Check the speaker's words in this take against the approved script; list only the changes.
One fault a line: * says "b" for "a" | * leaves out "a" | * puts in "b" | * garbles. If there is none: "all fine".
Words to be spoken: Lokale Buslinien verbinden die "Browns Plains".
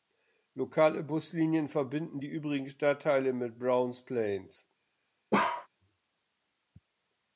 * puts in "übrigen Stadtteile mit"